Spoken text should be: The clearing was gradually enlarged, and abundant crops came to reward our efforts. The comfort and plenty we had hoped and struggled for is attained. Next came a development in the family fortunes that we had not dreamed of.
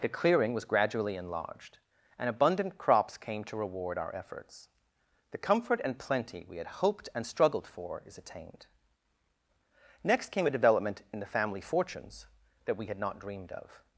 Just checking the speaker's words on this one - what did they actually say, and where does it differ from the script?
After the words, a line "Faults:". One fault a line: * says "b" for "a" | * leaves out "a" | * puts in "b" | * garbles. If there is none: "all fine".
The clearing was gradually enlarged, and abundant crops came to reward our efforts. The comfort and plenty we had hoped and struggled for is attained. Next came a development in the family fortunes that we had not dreamed of.
Faults:
all fine